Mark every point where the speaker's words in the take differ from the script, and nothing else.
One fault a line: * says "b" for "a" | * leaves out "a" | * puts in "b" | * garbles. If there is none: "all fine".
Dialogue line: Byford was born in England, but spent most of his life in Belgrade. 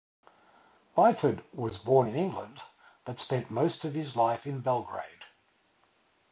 all fine